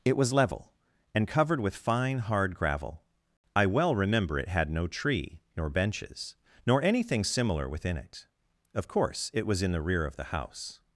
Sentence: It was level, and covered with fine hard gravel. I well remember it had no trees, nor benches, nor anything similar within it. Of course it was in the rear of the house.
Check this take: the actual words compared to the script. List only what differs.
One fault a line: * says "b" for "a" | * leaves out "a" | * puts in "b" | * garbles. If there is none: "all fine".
* says "tree" for "trees"